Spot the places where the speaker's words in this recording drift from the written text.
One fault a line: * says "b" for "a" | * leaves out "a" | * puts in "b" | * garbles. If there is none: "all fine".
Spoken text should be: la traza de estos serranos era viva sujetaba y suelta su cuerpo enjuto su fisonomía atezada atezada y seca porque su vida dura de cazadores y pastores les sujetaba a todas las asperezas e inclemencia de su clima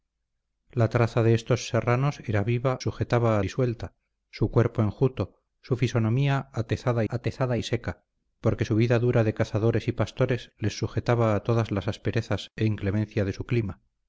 all fine